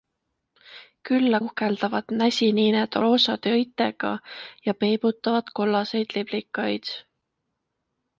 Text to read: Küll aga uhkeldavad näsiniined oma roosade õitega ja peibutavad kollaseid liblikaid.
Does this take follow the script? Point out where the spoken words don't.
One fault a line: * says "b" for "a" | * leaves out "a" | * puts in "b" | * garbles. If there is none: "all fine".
* leaves out "aga"
* leaves out "oma"